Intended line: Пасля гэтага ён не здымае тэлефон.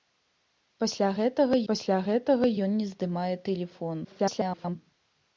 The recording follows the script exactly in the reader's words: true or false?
false